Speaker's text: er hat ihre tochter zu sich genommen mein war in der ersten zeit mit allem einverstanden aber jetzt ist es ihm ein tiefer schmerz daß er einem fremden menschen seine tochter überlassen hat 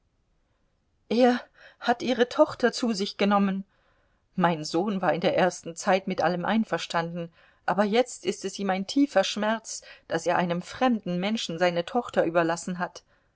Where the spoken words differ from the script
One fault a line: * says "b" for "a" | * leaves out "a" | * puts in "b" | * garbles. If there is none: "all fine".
* puts in "sohn"